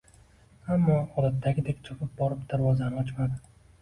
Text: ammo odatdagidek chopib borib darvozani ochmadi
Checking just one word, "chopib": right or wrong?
right